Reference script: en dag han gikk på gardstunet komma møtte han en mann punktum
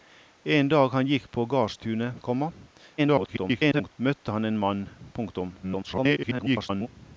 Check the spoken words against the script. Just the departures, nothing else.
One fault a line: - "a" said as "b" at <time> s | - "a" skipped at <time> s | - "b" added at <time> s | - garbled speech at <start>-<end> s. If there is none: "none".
- garbled speech at 3.0-3.9 s
- garbled speech at 5.6-6.9 s